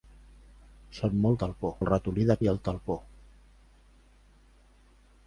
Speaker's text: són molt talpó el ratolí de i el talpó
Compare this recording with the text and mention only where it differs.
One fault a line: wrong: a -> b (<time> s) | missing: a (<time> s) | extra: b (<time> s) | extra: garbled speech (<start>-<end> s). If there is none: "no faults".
no faults